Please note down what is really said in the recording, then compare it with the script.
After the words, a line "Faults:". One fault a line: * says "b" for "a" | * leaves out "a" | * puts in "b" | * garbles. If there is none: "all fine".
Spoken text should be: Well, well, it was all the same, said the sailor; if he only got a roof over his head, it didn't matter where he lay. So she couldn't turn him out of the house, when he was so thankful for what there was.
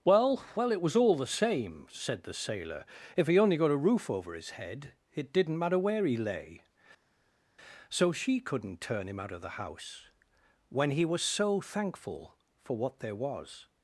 Well, well, it was all the same, said the sailor; if he only got a roof over his head, it didn't matter where he lay. So she couldn't turn him out of the house, when he was so thankful for what there was.
Faults:
all fine